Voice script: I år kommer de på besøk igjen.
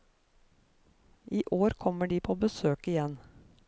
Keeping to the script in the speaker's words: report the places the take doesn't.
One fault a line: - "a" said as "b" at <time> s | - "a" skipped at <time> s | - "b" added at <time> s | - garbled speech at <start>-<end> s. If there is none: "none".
none